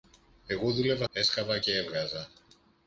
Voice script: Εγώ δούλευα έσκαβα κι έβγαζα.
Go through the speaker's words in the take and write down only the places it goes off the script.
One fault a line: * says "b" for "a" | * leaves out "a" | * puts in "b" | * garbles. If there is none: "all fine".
all fine